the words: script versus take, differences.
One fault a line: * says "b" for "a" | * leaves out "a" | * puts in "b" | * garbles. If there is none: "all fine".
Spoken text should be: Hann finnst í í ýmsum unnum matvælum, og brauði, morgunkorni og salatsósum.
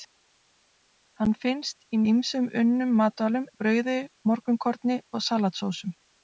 all fine